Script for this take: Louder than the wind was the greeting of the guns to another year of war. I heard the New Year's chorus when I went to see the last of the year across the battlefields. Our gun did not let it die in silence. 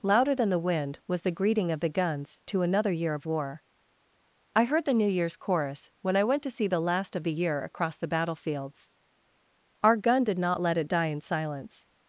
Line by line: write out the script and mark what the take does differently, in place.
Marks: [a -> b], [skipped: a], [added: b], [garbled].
Louder than the wind was the greeting of the guns to another year of war. I heard the New Year's chorus when I went to see the last of the year across the battlefields. Our gun did not let it die in silence.